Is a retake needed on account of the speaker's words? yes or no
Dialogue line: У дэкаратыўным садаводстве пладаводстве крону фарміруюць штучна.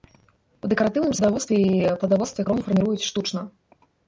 yes